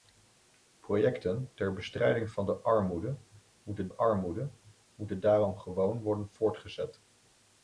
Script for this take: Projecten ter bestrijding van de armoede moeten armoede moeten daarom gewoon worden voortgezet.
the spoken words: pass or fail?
pass